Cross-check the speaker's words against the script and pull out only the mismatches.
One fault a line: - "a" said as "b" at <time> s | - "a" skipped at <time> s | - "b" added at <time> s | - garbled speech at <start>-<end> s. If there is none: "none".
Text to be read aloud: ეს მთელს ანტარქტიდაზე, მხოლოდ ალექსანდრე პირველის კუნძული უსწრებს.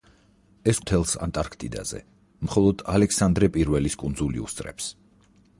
none